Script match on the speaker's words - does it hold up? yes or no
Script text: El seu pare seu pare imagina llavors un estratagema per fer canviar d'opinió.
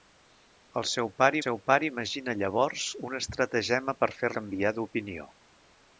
yes